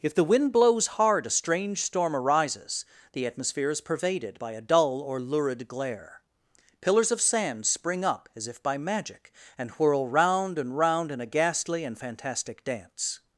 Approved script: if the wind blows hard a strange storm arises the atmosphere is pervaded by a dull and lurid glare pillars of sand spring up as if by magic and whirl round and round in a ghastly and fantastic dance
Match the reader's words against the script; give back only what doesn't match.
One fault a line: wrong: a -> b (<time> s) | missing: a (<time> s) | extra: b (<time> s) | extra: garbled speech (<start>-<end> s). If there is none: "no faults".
wrong: and -> or (5.0 s)